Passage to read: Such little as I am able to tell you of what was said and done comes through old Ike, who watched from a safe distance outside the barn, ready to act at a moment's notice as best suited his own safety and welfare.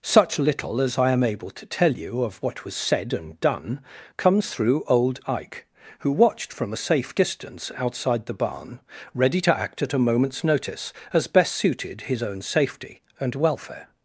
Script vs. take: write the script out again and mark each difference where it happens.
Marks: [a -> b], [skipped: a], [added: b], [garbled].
Such little as I am able to tell you of what was said and done comes through old Ike, who watched from a safe distance outside the barn, ready to act at a moment's notice as best suited his own safety and welfare.